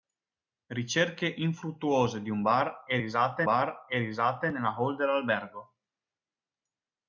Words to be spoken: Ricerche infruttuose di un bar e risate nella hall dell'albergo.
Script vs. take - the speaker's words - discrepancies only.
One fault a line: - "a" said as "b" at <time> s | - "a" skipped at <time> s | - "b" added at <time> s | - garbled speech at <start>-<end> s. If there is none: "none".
- "bar e risate" added at 3.4 s